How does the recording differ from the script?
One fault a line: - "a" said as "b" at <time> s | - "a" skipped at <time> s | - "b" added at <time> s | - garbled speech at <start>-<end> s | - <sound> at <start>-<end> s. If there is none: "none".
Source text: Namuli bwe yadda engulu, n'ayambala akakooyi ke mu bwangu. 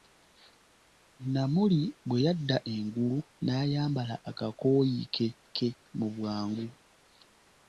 - "ke" added at 5.6 s